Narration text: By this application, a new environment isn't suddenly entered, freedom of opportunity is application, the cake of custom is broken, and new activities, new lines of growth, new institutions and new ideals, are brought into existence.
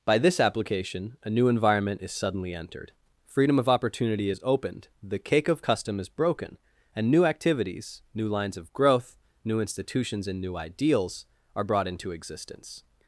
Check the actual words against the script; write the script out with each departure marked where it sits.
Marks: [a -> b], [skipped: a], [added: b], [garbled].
By this application, a new environment [isn't -> is] suddenly entered, freedom of opportunity is [application, -> opened] the cake of custom is broken, and new activities, new lines of growth, new institutions and new ideals, are brought into existence.